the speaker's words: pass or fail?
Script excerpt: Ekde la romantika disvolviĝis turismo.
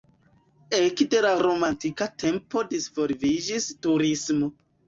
fail